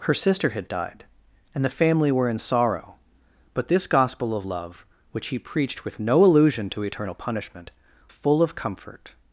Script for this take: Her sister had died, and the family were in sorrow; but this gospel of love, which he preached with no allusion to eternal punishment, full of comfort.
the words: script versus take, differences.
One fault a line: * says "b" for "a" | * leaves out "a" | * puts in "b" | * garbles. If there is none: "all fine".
all fine